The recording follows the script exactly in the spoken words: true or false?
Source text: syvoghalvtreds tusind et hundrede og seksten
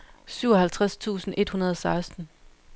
true